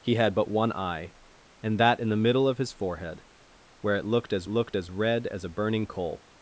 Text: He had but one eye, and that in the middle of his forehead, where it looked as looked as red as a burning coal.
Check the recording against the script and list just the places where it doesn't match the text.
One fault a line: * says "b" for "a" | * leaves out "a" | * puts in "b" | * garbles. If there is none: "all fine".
all fine